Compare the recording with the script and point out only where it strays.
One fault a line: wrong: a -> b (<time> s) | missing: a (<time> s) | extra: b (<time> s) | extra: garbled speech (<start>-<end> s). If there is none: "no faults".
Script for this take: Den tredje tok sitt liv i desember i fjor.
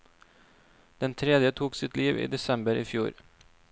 no faults